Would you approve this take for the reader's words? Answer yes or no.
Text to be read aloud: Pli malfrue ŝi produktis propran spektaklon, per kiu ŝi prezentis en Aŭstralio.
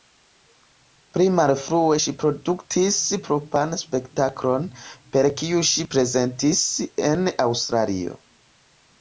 yes